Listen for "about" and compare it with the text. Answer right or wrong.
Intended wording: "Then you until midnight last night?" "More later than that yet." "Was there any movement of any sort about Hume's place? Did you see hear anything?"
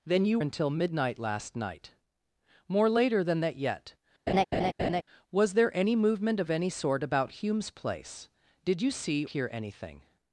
right